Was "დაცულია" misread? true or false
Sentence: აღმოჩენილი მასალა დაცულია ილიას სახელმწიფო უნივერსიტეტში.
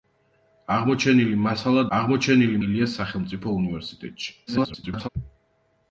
true